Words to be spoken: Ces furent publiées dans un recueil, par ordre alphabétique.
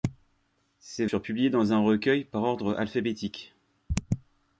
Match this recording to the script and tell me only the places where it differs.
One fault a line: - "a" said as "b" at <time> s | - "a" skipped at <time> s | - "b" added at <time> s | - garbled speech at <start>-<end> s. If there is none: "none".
none